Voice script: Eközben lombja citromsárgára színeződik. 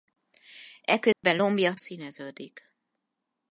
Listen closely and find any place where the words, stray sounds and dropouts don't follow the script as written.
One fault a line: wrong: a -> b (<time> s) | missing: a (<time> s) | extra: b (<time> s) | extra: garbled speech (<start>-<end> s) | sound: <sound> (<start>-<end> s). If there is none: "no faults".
sound: dropout (1.1-1.2 s)
missing: citromsárgára (1.7 s)